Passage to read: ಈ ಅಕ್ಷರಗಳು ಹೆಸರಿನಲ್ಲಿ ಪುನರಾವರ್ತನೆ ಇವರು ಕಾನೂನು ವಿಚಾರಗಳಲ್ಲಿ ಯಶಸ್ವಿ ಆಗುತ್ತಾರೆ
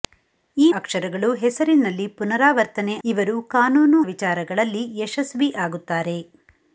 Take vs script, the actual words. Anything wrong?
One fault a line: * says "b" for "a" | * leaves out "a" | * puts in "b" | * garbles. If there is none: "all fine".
all fine